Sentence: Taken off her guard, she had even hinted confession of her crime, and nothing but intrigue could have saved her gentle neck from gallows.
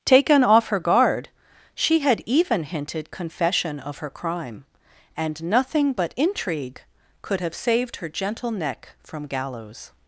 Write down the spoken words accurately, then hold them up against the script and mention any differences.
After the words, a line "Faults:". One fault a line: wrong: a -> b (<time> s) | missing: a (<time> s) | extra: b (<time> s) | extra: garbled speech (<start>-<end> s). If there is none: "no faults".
Taken off her guard, she had even hinted confession of her crime, and nothing but intrigue could have saved her gentle neck from gallows.
Faults:
no faults